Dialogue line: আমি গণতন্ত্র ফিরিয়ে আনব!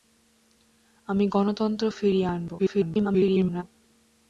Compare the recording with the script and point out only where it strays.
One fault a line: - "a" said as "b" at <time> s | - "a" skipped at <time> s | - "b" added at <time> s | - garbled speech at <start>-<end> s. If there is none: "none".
- garbled speech at 2.6-3.6 s